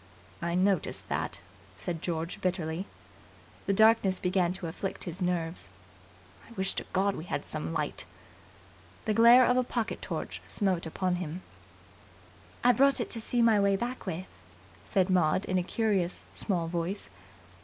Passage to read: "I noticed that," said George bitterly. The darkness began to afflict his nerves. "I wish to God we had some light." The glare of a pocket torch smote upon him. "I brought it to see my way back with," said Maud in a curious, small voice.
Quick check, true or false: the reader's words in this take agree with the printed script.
true